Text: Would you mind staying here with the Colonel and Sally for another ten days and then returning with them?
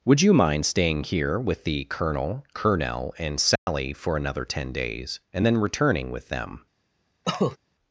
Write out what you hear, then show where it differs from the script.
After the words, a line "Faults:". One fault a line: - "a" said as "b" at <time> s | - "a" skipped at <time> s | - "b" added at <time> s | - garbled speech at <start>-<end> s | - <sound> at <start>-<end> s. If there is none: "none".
Would you mind staying here with the Colonel Colonel and Sally for another ten days and then returning with them?
Faults:
- "Colonel" added at 2.5 s
- dropout at 3.6-3.7 s
- cough at 7.2-7.6 s